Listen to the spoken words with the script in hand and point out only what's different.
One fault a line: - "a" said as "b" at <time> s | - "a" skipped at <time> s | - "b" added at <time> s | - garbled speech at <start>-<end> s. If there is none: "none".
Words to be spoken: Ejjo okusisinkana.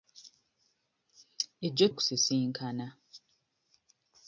none